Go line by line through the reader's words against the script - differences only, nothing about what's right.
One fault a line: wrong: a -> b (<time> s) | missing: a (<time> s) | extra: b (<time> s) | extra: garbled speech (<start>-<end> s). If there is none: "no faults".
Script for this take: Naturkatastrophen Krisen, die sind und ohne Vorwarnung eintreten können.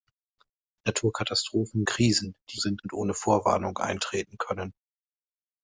no faults